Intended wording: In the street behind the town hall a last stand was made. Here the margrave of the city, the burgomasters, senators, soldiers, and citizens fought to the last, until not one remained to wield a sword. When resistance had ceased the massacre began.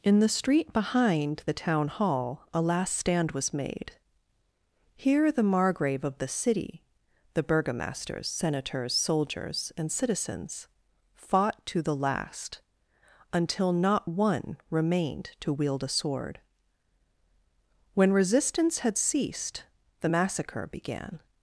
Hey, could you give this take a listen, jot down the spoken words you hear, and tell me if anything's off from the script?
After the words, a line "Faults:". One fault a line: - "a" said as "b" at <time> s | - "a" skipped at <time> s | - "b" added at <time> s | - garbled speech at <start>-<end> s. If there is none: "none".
In the street behind the town hall a last stand was made. Here the margrave of the city, the burgomasters, senators, soldiers, and citizens fought to the last, until not one remained to wield a sword. When resistance had ceased the massacre began.
Faults:
none